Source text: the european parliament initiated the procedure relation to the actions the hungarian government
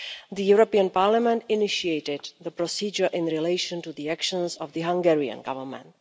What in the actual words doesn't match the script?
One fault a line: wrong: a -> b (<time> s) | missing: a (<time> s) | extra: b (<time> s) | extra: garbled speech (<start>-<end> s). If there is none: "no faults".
extra: in (3.1 s)
extra: of (4.5 s)